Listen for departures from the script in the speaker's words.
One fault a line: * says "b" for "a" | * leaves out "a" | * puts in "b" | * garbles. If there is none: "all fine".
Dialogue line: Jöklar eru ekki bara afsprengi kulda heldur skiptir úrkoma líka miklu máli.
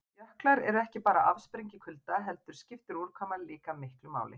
all fine